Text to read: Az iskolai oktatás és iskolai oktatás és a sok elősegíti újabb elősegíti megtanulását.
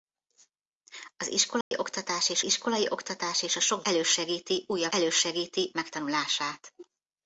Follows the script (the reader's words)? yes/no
yes